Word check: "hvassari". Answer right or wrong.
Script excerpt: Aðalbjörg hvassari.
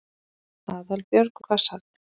right